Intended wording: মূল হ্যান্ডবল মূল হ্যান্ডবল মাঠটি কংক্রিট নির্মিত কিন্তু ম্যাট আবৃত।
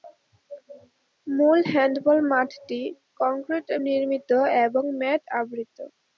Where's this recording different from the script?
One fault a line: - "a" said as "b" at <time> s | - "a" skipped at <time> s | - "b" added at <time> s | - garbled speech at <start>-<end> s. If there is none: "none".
- "মূল হ্যান্ডবল" skipped at 2.2 s
- "কিন্তু" said as "এবং" at 4.6 s